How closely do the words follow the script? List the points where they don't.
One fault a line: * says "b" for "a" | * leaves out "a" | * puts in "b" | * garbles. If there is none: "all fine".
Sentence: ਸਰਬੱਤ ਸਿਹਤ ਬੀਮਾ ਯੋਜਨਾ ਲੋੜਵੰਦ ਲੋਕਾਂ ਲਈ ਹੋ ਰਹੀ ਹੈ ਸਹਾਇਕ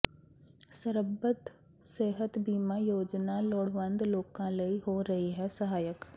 all fine